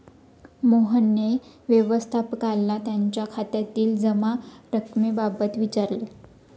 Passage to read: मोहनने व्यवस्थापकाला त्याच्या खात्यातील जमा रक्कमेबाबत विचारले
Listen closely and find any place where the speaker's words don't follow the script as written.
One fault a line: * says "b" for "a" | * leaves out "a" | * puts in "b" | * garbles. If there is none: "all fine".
all fine